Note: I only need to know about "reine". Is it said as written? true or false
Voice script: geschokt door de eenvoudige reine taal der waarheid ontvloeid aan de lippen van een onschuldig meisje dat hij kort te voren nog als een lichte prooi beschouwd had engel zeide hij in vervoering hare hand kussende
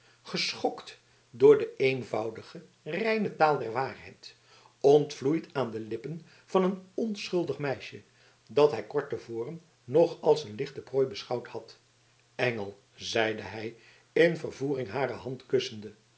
true